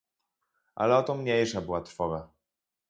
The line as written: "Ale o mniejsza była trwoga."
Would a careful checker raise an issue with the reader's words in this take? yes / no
yes